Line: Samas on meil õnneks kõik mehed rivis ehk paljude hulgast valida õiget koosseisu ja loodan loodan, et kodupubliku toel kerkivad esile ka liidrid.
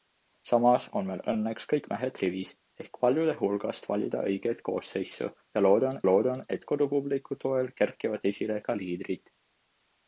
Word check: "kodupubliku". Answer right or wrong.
right